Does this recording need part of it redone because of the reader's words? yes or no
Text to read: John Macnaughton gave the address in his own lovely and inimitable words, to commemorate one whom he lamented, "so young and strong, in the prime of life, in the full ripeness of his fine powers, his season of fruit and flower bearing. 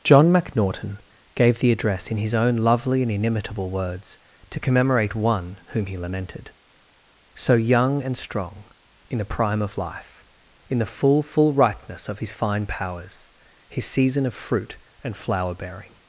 yes